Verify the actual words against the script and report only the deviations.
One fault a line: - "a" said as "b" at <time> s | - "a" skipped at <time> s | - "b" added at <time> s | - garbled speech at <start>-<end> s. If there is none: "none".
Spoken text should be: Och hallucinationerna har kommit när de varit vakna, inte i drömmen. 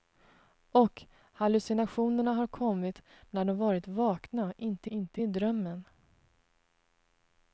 - "inte" added at 4.9 s